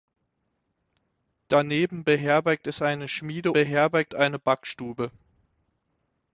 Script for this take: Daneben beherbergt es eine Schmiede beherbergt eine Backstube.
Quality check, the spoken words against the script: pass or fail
pass